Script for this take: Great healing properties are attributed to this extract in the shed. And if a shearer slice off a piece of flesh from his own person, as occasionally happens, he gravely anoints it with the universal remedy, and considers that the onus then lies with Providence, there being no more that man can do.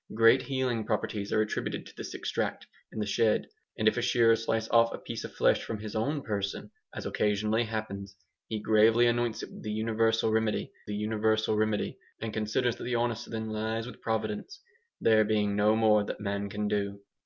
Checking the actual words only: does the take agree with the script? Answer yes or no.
no